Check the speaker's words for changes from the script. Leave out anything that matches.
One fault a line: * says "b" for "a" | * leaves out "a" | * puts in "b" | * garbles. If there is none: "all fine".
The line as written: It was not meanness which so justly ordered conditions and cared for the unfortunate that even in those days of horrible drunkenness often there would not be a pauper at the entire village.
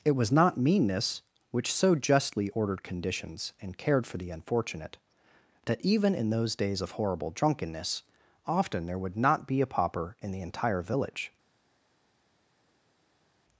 * says "in" for "at"